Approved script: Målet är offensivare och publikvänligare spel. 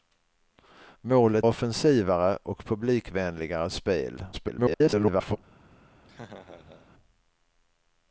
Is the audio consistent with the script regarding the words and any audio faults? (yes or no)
no